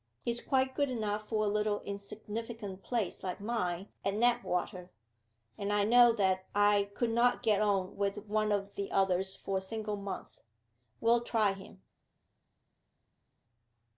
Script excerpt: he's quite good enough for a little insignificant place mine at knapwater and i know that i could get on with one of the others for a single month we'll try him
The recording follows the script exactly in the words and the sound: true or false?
false